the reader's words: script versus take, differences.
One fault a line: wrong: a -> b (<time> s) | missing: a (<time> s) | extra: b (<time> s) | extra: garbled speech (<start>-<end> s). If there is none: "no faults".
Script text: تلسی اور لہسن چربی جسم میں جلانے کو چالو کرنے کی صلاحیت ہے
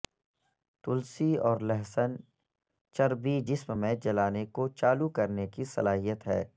no faults